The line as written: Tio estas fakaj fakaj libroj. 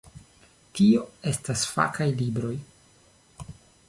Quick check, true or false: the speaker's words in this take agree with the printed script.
false